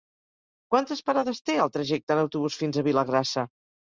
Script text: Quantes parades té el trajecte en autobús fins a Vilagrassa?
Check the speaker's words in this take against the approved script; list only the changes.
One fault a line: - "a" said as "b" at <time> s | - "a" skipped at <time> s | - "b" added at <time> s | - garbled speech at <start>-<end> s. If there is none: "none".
none